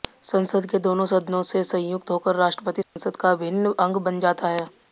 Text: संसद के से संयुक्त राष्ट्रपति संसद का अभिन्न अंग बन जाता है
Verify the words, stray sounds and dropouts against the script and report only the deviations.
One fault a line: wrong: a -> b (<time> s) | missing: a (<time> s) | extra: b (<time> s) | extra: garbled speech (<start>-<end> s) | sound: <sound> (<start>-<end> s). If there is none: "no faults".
extra: दोनों सदनों (0.8 s)
extra: होकर (2.1 s)
sound: dropout (2.8-3.0 s)